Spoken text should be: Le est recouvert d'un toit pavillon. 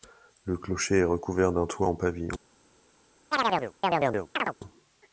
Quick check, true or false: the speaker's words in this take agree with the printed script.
false